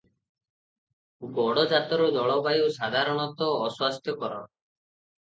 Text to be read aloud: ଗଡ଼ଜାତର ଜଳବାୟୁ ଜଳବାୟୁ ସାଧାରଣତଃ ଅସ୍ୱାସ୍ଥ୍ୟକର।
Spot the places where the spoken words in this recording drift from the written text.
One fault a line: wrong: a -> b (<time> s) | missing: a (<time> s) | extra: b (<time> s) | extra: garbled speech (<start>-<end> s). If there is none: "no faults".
missing: ଜଳବାୟୁ (2.7 s)